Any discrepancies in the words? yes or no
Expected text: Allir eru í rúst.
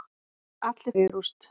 no